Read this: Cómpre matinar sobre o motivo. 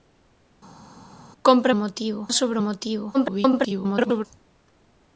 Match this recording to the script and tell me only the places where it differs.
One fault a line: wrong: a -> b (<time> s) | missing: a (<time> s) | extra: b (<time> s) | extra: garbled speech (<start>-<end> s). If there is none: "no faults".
wrong: matinar -> motivo (1.7 s)
extra: garbled speech (3.1-4.3 s)